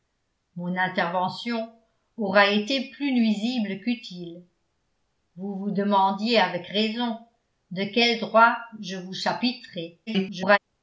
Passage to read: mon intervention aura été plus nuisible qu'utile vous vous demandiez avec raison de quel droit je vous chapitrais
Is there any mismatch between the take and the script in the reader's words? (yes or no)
yes